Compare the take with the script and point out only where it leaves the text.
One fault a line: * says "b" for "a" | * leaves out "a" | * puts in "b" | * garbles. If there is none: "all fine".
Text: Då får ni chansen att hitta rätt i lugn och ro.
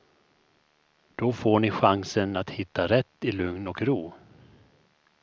all fine